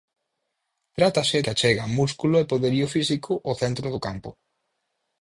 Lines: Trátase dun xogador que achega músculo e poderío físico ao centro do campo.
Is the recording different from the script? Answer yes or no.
yes